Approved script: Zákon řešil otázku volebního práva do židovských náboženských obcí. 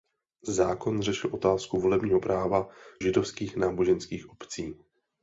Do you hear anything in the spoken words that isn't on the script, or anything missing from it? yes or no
yes